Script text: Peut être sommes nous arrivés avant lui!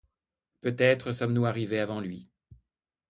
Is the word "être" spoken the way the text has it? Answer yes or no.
yes